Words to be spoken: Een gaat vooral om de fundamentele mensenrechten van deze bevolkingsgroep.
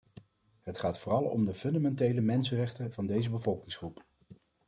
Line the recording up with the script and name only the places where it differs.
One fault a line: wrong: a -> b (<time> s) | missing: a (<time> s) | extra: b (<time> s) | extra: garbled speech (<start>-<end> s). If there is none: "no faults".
wrong: Een -> Het (0.6 s)